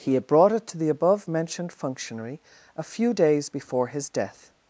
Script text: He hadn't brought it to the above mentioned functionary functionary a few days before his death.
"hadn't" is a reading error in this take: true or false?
true